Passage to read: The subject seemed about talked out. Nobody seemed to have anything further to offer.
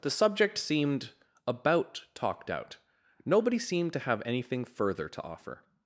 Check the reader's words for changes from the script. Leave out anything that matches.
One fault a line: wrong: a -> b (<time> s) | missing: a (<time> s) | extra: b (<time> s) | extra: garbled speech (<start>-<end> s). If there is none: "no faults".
no faults